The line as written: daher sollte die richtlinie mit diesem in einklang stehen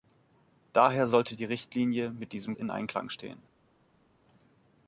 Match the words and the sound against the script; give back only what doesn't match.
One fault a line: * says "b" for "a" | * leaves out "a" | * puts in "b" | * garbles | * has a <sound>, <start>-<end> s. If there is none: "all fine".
all fine